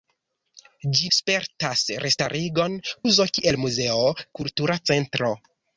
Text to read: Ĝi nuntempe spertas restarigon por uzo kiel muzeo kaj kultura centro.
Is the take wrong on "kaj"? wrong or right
wrong